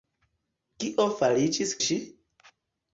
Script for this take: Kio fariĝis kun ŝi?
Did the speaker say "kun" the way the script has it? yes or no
no